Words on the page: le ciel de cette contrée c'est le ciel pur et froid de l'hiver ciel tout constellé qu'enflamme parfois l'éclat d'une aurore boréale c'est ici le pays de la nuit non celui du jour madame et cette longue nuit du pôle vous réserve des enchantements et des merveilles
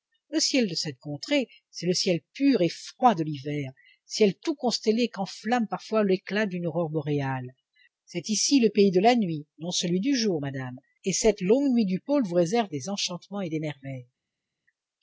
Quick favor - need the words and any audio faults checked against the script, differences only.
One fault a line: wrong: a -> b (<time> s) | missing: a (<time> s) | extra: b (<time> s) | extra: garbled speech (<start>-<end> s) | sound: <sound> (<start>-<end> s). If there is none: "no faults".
no faults